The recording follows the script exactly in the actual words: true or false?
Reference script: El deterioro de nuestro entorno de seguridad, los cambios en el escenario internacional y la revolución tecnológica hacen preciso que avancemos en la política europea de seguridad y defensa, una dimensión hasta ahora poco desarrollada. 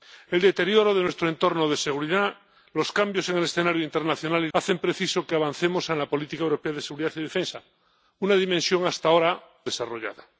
false